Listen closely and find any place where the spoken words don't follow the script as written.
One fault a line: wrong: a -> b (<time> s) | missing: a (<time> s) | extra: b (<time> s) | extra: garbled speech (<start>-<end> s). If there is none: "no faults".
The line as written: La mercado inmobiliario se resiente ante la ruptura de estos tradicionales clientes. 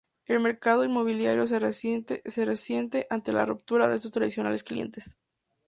wrong: La -> El (0.2 s)